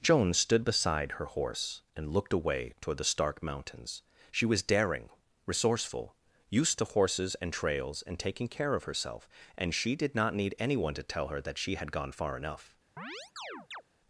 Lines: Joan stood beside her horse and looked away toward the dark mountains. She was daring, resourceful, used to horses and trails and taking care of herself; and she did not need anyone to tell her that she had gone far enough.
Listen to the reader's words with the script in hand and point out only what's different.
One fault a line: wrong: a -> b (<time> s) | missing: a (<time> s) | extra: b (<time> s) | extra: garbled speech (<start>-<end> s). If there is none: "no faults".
wrong: dark -> stark (3.0 s)